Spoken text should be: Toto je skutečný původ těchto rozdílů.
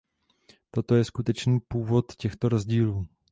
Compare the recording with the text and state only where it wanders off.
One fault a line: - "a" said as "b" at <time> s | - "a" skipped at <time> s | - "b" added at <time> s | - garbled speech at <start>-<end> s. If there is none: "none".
none